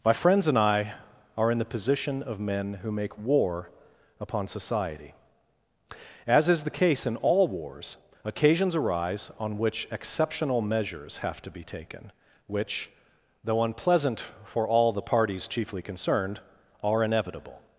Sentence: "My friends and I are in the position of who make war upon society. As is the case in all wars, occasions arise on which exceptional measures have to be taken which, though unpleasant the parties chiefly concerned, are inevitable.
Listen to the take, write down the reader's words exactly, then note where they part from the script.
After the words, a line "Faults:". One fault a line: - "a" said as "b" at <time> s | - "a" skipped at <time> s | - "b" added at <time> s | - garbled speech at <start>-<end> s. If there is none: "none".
"My friends and I are in the position of men who make war upon society. As is the case in all wars, occasions arise on which exceptional measures have to be taken which, though unpleasant for all the parties chiefly concerned, are inevitable.
Faults:
- "men" added at 2.4 s
- "for all" added at 14.4 s